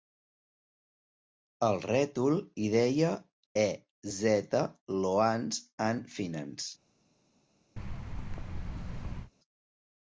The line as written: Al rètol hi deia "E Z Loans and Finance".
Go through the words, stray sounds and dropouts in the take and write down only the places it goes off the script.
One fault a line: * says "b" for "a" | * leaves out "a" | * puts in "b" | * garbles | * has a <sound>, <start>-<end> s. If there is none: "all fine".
* has a thud, 7.8-9.3 s